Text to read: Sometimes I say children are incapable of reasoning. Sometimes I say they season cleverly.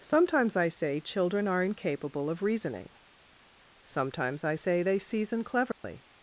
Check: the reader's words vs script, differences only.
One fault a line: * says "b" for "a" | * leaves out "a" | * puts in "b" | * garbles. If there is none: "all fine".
all fine